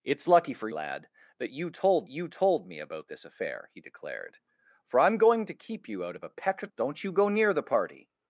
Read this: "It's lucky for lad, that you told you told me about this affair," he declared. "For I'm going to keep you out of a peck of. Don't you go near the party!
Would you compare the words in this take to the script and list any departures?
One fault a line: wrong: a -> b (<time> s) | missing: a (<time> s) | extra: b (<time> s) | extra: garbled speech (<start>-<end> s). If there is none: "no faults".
no faults